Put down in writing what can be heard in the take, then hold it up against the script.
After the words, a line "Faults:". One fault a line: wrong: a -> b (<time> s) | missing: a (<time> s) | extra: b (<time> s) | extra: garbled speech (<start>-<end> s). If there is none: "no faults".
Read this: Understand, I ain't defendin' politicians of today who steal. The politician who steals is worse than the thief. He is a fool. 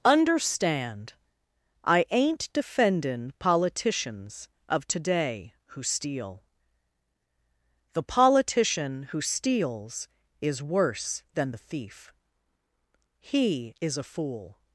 Understand, I ain't defendin' politicians of today who steal. The politician who steals is worse than the thief. He is a fool.
Faults:
no faults